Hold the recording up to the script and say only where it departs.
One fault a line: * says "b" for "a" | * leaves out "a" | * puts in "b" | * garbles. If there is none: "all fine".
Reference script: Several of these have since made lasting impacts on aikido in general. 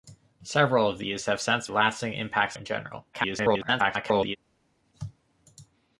* leaves out "made"
* leaves out "on aikido"
* garbles